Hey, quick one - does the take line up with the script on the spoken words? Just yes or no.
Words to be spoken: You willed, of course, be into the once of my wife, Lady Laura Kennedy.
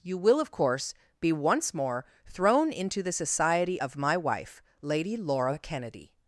no